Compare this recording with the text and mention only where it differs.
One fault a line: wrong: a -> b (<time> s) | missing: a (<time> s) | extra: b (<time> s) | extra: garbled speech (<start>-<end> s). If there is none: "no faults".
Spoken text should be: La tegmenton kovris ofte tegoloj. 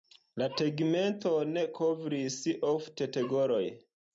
no faults